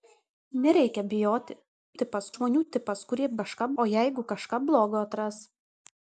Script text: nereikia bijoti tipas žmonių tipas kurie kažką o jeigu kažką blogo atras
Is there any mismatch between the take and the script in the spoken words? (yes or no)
no